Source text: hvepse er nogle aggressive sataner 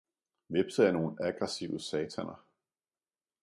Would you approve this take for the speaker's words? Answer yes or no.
yes